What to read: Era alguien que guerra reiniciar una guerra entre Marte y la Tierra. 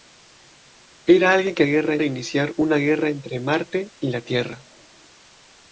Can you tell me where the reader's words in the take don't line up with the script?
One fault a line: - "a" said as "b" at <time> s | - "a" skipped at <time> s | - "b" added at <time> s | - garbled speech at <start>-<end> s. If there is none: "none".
none